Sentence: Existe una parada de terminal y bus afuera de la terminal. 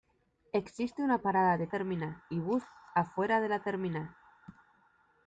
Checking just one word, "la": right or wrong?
right